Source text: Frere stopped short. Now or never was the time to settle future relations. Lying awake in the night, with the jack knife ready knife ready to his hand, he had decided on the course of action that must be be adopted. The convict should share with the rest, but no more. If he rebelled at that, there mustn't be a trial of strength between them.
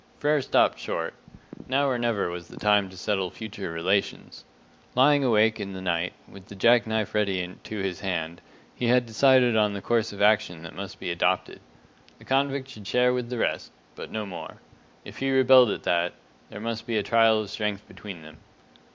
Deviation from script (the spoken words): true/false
true